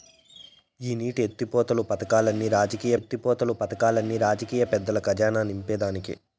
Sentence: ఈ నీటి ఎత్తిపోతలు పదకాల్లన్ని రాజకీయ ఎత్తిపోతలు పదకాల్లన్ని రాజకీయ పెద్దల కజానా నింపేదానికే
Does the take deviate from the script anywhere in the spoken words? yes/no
no